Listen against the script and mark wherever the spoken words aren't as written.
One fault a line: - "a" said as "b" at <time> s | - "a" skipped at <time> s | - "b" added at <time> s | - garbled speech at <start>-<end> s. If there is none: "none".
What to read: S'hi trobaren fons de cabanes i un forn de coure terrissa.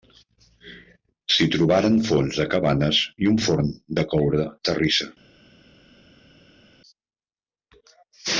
none